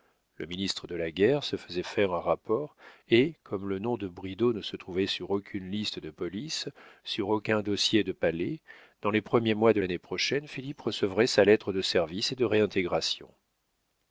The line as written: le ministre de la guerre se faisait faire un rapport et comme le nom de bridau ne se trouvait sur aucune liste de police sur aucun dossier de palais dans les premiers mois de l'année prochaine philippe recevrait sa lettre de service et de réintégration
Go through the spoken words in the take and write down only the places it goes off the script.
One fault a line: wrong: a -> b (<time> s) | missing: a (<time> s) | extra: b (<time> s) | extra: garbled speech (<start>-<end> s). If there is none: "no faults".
no faults